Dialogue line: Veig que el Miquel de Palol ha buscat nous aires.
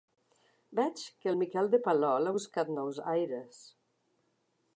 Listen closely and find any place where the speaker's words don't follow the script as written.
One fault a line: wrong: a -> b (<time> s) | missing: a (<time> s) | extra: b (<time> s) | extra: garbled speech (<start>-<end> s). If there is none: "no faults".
no faults